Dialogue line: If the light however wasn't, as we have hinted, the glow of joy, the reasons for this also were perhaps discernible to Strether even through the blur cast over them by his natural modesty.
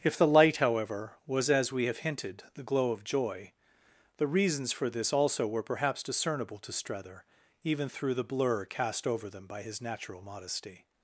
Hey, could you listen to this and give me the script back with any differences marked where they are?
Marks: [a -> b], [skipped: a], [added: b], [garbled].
If the light however [wasn't, -> was] as we have hinted, the glow of joy, the reasons for this also were perhaps discernible to Strether even through the blur cast over them by his natural modesty.